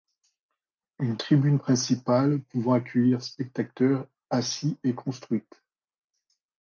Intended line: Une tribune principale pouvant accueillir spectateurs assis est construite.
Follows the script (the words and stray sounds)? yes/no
yes